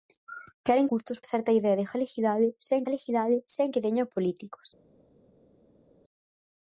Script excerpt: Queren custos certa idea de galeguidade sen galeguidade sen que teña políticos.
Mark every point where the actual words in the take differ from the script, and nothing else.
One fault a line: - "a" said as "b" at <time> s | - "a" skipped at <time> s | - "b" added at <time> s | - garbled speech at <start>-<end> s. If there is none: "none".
none